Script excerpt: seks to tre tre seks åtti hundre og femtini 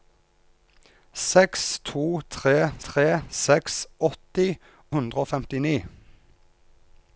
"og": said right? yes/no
yes